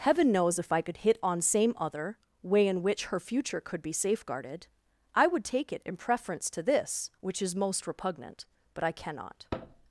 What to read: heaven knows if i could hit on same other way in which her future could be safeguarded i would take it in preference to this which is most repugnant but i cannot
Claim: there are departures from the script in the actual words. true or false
false